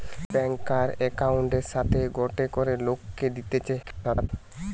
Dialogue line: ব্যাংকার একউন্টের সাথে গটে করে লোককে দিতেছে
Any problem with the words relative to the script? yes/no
yes